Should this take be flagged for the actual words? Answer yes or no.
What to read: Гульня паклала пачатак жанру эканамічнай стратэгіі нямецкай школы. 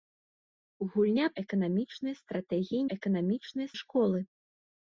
yes